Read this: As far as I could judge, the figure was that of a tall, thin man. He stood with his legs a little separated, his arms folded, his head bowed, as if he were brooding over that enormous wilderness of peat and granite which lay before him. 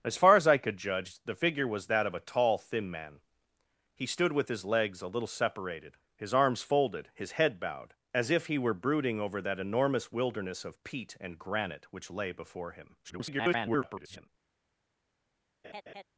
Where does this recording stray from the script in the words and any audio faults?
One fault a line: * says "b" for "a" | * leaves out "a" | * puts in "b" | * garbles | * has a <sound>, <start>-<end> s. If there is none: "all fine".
* garbles
* has a laugh, 15.6-16.0 s